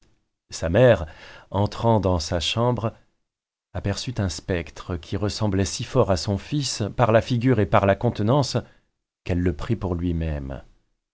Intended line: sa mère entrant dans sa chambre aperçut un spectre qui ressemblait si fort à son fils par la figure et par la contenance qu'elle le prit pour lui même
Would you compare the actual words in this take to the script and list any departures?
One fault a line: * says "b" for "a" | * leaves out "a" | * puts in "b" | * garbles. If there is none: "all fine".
all fine